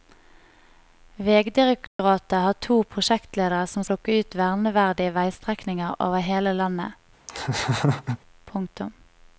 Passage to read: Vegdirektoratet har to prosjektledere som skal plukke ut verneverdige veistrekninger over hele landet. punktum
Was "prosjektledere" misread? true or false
false